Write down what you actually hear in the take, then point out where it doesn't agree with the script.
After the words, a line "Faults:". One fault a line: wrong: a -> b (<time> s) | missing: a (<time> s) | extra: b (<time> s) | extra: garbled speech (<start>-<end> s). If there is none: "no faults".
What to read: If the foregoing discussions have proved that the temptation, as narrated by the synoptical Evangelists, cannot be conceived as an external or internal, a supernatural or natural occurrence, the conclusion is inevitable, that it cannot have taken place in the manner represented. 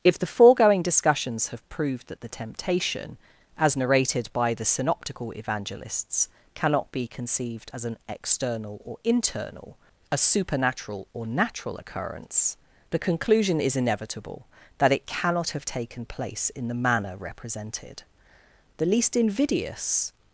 If the foregoing discussions have proved that the temptation, as narrated by the synoptical Evangelists, cannot be conceived as an external or internal, a supernatural or natural occurrence, the conclusion is inevitable, that it cannot have taken place in the manner represented. The least invidious
Faults:
extra: The least invidious (18.8 s)